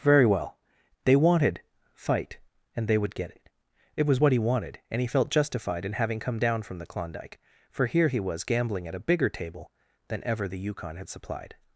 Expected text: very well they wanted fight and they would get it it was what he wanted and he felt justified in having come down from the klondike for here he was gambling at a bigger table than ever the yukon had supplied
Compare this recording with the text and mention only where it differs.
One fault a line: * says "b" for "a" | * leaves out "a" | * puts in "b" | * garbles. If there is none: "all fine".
all fine